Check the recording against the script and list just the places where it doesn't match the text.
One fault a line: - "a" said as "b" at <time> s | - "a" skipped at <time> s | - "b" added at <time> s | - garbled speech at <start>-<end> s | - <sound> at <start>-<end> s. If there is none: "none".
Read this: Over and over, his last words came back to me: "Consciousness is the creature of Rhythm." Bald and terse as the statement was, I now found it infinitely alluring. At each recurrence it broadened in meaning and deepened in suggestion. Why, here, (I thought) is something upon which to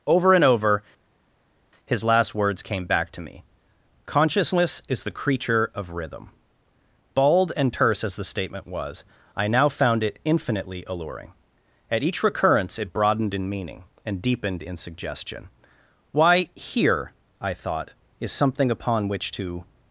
none